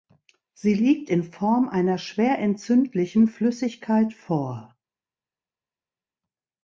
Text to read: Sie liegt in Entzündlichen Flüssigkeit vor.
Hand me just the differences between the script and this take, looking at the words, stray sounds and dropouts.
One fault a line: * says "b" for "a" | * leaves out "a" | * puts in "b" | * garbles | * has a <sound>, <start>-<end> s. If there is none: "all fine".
* puts in "Form einer schwer"